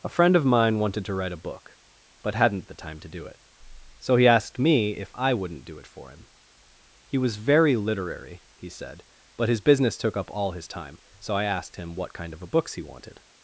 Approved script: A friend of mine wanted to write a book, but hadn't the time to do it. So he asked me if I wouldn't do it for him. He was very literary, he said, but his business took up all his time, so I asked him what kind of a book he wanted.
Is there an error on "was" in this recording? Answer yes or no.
no